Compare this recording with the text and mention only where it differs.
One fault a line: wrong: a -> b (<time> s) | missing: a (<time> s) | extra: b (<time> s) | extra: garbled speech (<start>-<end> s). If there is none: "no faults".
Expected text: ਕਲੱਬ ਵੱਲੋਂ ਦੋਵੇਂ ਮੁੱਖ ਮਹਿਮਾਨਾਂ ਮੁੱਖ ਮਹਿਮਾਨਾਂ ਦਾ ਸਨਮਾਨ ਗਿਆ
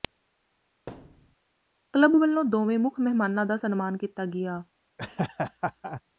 missing: ਮੁੱਖ ਮਹਿਮਾਨਾਂ (3.5 s)
extra: ਕੀਤਾ (4.0 s)